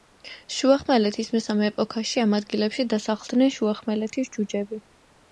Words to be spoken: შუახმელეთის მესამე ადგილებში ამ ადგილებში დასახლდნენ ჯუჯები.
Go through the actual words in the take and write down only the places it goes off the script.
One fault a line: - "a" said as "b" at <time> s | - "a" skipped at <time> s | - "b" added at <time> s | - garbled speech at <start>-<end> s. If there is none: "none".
- "ადგილებში" said as "ეპოქაში" at 1.7 s
- "შუახმელეთის" added at 3.6 s